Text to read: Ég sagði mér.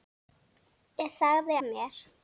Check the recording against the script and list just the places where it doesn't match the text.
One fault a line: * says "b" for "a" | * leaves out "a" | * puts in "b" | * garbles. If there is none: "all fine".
all fine